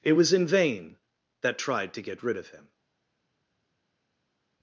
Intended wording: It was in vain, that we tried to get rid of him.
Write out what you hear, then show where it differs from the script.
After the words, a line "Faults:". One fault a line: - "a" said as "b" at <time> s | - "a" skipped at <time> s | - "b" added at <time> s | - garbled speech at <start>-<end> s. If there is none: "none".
It was in vain, that tried to get rid of him.
Faults:
- "we" skipped at 1.6 s